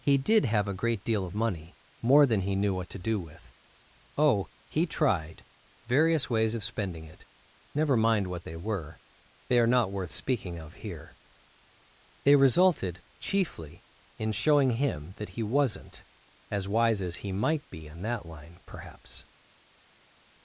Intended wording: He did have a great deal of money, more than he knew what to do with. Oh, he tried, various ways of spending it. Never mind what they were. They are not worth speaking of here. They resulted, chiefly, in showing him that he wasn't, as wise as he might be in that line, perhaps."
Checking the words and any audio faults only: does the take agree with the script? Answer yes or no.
yes